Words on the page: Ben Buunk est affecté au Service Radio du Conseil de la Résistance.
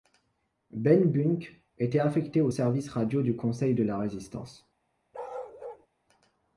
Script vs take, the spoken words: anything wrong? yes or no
yes